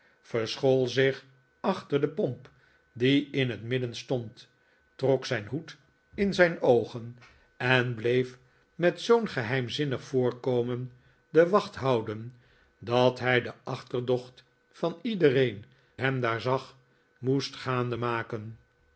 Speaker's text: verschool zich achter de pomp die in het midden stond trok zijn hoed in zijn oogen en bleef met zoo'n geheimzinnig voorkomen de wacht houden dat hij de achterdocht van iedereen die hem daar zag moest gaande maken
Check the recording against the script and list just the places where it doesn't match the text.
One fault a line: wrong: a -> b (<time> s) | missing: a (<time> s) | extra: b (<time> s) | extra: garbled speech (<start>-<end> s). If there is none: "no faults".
missing: die (15.7 s)